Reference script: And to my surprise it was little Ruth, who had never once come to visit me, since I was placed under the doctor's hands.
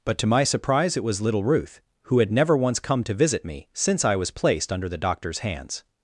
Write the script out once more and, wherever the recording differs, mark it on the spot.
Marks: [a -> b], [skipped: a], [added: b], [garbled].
[And -> But] to my surprise it was little Ruth, who had never once come to visit me, since I was placed under the doctor's hands.